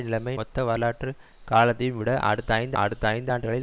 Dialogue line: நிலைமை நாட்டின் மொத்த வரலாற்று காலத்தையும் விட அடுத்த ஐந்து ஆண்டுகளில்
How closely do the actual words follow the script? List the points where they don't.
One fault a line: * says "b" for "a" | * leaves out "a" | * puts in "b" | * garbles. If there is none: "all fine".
* leaves out "நாட்டின்"
* puts in "அடுத்த ஐந்து"